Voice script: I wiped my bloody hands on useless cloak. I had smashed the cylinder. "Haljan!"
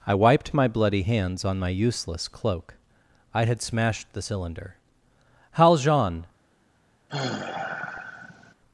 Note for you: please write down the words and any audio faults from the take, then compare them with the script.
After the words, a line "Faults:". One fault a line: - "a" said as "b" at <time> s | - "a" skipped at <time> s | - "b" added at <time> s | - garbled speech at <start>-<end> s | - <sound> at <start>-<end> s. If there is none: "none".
I wiped my bloody hands on my useless cloak. I had smashed the cylinder. "Haljan!"
Faults:
- "my" added at 1.6 s
- sigh at 7.1-8.5 s